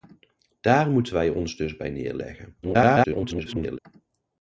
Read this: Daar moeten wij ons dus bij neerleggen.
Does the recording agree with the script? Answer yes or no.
no